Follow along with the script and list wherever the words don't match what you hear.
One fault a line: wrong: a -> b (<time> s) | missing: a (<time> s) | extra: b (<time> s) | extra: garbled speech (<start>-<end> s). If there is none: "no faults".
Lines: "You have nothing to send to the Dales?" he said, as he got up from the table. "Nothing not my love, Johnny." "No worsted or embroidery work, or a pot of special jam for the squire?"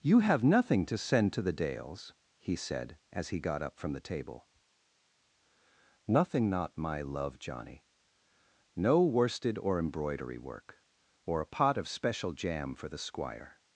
no faults